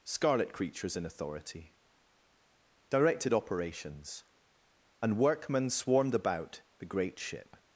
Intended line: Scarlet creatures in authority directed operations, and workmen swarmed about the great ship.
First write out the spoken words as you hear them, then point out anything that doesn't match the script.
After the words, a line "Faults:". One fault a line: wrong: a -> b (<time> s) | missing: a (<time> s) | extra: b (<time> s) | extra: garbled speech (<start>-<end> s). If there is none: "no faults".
Scarlet creatures in authority directed operations, and workmen swarmed about the great ship.
Faults:
no faults